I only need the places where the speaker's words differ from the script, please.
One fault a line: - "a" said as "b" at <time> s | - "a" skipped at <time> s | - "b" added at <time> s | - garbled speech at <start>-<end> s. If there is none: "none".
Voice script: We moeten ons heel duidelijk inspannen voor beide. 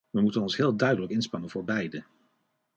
none